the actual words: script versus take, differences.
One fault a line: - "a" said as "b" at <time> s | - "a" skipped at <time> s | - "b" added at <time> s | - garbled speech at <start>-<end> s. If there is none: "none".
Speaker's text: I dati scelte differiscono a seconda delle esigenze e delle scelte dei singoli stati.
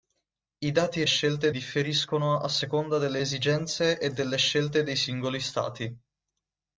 none